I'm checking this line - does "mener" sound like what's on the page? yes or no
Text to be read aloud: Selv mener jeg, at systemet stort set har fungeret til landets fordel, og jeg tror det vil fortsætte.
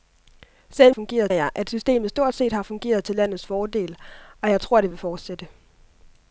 no